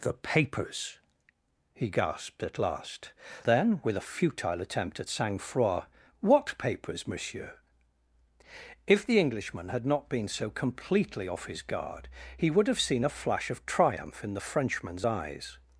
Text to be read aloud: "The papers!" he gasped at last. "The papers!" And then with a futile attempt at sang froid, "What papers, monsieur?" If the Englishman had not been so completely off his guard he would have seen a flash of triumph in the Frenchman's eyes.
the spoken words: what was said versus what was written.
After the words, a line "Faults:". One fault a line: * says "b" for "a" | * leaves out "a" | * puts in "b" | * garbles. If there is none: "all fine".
"The papers!" he gasped at last. "Then with a futile attempt at sang froid, "What papers, monsieur?" If the Englishman had not been so completely off his guard he would have seen a flash of triumph in the Frenchman's eyes.
Faults:
* leaves out "The papers And"